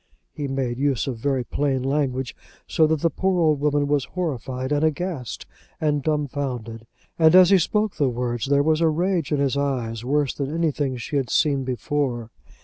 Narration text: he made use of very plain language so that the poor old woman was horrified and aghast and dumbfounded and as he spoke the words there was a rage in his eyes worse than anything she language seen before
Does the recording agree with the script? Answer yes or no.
no